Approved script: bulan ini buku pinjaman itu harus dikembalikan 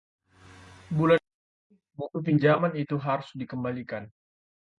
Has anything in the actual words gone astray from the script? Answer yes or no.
no